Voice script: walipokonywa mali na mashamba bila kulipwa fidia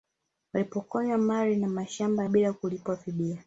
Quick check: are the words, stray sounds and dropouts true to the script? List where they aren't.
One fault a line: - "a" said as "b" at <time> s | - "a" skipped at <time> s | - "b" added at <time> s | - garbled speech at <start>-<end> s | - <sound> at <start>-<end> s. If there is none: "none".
none